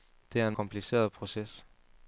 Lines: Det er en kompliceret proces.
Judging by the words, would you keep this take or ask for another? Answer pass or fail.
pass